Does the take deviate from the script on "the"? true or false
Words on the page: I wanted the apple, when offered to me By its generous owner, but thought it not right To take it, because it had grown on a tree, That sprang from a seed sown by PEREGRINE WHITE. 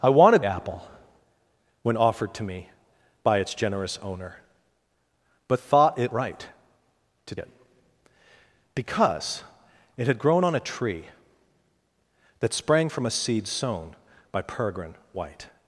true